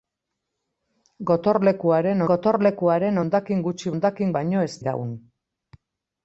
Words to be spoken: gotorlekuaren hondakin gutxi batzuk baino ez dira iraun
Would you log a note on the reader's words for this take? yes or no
yes